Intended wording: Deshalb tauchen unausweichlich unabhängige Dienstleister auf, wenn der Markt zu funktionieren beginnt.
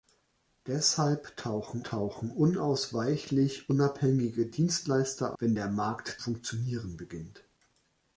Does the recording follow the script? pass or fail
fail